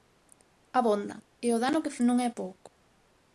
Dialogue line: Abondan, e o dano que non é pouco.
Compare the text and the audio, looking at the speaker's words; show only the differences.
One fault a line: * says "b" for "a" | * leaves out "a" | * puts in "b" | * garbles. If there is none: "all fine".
all fine